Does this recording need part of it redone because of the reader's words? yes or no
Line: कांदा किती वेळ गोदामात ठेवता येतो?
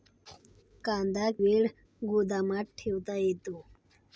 yes